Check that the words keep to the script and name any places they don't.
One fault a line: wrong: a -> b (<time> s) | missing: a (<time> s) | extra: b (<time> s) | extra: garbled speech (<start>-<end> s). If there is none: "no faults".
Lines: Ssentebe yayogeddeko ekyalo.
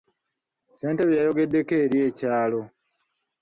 extra: eri (1.8 s)